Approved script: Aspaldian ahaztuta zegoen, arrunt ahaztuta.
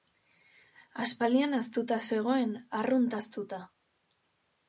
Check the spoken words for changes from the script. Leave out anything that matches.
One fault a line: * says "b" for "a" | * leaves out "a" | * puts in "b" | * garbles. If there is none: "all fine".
all fine